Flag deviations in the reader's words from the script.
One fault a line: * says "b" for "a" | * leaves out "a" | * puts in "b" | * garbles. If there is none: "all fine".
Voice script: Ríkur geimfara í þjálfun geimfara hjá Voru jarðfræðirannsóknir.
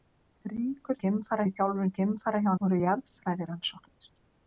all fine